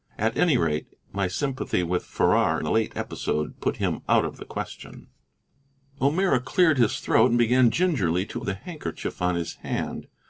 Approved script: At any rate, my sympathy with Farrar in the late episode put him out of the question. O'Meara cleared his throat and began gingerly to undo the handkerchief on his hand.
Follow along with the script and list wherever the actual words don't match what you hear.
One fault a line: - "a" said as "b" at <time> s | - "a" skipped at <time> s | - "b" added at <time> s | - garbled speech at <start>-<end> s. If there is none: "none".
- "in" skipped at 2.6 s
- "undo" skipped at 8.4 s